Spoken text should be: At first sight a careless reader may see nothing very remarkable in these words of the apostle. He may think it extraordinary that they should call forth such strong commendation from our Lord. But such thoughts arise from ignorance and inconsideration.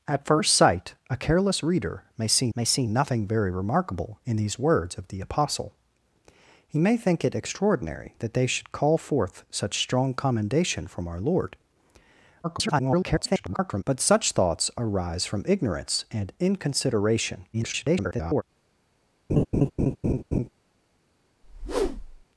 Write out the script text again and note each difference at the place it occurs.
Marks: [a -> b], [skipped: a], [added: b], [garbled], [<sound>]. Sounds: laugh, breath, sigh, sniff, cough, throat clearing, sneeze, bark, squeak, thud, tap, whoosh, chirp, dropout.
At first sight a careless reader may see [added: may see] nothing very remarkable in these words of the apostle. He may think it extraordinary that they should call forth such strong commendation from our Lord. [garbled] But such thoughts arise from ignorance and inconsideration. [garbled] [laugh] [whoosh]